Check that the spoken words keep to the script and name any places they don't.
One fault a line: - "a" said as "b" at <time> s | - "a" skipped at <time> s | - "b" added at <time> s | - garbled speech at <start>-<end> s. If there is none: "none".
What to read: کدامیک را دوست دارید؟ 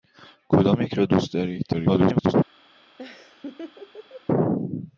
- garbled speech at 1.7-2.3 s